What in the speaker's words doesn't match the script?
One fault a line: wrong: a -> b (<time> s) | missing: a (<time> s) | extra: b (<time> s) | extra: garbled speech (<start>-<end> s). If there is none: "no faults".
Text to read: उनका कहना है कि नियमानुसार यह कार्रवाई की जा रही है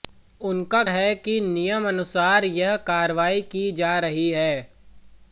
missing: कहना (0.8 s)